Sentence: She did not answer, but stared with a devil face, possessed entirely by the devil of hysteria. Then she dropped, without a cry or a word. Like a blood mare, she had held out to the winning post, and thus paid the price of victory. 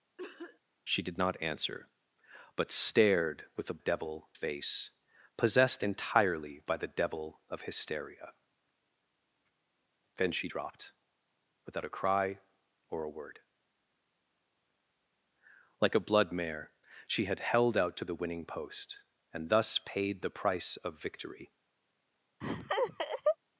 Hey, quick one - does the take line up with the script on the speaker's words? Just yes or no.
yes